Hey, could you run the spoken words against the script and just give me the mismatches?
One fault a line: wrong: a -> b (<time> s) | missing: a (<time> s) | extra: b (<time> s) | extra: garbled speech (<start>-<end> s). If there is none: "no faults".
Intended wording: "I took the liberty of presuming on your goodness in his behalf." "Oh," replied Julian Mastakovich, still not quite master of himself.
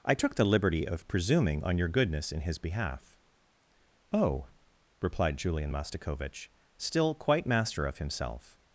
missing: not (7.1 s)